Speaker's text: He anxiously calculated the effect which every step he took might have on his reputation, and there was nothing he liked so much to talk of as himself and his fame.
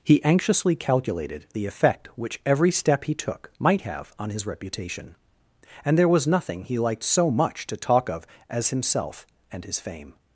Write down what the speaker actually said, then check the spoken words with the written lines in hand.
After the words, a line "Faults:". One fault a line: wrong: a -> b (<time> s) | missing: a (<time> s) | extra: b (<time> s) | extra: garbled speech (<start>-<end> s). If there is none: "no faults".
He anxiously calculated the effect which every step he took might have on his reputation, and there was nothing he liked so much to talk of as himself and his fame.
Faults:
no faults